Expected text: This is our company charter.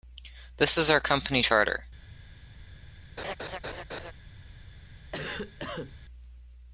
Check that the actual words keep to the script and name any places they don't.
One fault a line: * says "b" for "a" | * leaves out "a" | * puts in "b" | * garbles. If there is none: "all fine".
all fine